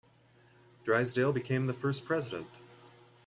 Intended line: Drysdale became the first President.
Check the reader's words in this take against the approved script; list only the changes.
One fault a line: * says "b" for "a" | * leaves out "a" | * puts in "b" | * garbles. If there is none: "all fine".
all fine